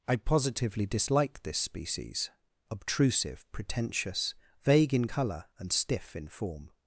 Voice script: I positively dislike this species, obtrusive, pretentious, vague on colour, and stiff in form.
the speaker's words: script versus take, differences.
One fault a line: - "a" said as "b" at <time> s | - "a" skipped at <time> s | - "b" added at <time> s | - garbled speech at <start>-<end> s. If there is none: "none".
- "on" said as "in" at 5.0 s